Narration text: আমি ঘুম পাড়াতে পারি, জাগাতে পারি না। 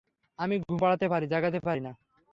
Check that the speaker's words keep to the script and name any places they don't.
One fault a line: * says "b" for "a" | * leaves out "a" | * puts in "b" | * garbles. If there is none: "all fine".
all fine